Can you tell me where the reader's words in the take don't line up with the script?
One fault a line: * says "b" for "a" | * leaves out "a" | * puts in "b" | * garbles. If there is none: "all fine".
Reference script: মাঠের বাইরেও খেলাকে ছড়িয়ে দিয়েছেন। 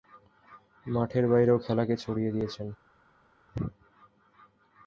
all fine